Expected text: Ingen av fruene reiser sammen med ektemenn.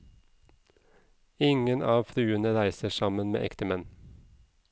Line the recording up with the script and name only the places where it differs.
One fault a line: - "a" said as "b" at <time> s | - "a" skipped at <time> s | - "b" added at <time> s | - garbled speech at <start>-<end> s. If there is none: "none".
none